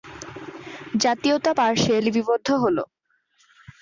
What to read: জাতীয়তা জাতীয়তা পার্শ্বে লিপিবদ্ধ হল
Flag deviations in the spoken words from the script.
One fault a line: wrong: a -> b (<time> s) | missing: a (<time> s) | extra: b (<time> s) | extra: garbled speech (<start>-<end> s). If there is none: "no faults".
missing: জাতীয়তা (1.5 s)